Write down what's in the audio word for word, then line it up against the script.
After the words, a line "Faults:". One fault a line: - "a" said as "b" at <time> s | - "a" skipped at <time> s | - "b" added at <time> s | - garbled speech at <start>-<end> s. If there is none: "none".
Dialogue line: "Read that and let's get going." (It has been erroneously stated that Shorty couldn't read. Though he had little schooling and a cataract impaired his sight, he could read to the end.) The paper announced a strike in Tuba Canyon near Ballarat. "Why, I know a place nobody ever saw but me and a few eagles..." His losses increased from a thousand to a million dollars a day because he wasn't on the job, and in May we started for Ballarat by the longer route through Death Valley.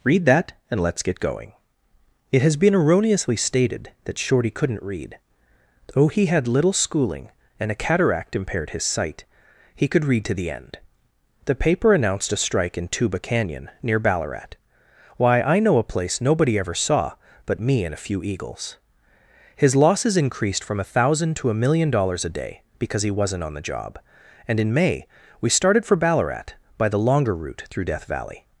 "Read that and let's get going." (It has been erroneously stated that Shorty couldn't read. Though he had little schooling and a cataract impaired his sight, he could read to the end.) The paper announced a strike in Tuba Canyon near Ballarat. "Why, I know a place nobody ever saw but me and a few eagles..." His losses increased from a thousand to a million dollars a day because he wasn't on the job, and in May we started for Ballarat by the longer route through Death Valley.
Faults:
none